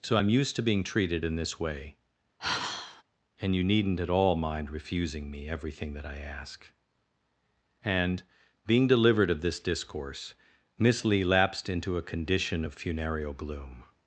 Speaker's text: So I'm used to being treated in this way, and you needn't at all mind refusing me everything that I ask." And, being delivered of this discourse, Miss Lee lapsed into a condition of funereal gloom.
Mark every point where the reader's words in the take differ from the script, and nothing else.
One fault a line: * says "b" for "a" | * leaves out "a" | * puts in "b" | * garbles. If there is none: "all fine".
all fine